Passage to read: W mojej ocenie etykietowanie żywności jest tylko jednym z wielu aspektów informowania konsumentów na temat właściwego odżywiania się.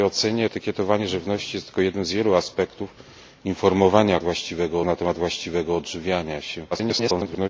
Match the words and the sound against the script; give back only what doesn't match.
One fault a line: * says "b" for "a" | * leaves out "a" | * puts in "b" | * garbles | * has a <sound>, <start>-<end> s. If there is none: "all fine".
* says "właściwego" for "konsumentów"
* garbles